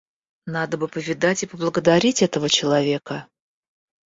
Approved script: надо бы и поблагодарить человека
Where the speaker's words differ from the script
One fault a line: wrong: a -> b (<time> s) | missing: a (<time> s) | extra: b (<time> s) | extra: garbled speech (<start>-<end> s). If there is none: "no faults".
extra: повидать (0.9 s)
extra: этого (2.2 s)